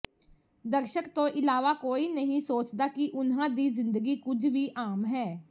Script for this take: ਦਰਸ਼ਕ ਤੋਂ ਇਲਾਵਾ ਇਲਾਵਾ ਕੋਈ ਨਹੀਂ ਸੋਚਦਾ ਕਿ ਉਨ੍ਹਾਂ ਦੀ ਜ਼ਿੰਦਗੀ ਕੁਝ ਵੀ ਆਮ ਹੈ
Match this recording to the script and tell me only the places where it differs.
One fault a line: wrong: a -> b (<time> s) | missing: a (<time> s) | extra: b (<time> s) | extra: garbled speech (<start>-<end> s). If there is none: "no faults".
missing: ਇਲਾਵਾ (1.7 s)